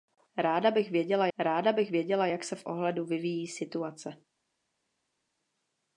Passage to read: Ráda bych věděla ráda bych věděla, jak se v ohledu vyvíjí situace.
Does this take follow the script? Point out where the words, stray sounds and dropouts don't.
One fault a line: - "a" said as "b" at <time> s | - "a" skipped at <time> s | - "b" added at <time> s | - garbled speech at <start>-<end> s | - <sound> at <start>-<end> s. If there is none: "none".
none